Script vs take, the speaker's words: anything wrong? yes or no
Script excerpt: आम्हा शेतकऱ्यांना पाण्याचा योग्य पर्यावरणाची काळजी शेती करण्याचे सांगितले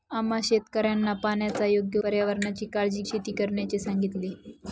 no